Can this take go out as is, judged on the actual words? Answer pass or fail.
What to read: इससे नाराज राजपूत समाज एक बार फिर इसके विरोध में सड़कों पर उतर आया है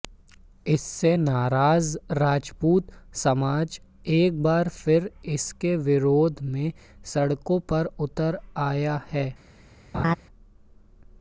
pass